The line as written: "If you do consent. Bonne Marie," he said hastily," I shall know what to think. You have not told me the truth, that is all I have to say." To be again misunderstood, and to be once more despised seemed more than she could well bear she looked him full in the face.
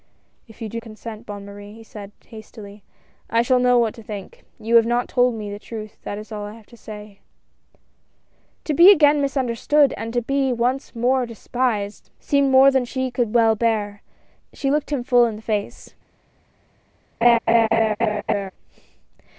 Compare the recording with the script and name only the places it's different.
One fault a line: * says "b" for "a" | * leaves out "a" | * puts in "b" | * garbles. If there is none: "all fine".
all fine